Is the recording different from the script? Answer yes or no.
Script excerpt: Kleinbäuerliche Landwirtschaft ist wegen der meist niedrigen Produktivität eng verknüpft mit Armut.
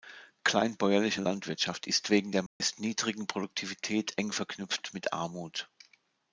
no